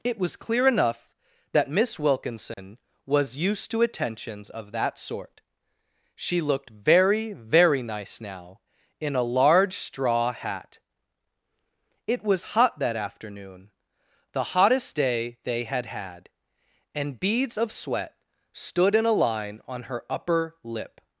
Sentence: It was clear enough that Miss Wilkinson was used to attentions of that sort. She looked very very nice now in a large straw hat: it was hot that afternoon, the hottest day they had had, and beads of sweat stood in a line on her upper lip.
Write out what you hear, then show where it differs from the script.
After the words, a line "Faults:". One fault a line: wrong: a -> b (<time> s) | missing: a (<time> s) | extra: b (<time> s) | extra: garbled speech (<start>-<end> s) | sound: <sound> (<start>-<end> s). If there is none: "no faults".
It was clear enough that Miss Wilkinson was used to attentions of that sort. She looked very very nice now in a large straw hat: it was hot that afternoon, the hottest day they had had, and beads of sweat stood in a line on her upper lip.
Faults:
sound: dropout (2.5-2.6 s)